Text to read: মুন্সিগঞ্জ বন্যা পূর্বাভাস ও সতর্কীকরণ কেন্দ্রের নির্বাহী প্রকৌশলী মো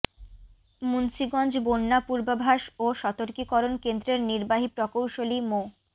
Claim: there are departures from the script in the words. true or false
false